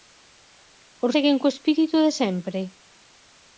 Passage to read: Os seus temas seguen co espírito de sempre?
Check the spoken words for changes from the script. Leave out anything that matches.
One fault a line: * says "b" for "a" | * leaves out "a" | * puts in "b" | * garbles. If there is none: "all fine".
* leaves out "seus temas"